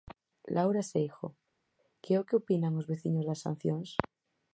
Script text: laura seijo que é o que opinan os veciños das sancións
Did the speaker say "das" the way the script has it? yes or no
yes